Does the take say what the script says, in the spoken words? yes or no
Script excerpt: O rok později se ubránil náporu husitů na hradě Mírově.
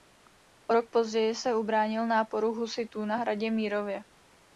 yes